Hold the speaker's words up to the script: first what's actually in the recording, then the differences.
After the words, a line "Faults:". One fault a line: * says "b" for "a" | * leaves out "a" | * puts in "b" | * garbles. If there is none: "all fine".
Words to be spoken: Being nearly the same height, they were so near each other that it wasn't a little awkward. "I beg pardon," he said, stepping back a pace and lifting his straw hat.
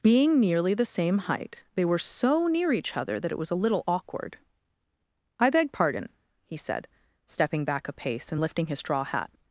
Being nearly the same height, they were so near each other that it was a little awkward. "I beg pardon," he said, stepping back a pace and lifting his straw hat.
Faults:
* says "was" for "wasn't"